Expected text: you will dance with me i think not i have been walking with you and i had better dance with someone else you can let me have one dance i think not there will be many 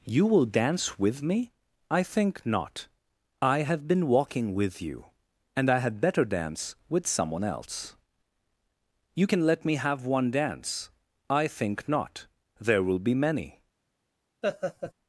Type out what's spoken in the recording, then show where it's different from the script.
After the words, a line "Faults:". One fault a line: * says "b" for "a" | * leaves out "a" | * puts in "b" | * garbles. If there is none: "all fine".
you will dance with me i think not i have been walking with you and i had better dance with someone else you can let me have one dance i think not there will be many
Faults:
all fine